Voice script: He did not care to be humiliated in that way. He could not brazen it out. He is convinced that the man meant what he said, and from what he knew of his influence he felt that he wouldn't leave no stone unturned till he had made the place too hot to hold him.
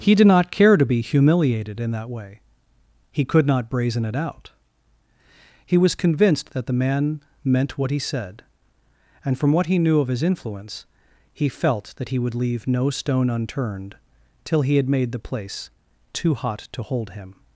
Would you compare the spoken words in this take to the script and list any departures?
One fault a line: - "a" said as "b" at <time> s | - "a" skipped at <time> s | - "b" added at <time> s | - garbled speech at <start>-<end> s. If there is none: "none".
- "is" said as "was" at 5.8 s
- "wouldn't" said as "would" at 12.2 s